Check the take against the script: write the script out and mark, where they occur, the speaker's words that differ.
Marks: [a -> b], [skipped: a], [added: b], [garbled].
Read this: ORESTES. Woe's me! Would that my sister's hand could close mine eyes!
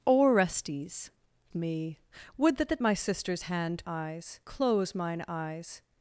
ORESTES. [skipped: Woe's] me! Would that [added: that] my sister's hand [could -> eyes] close mine eyes!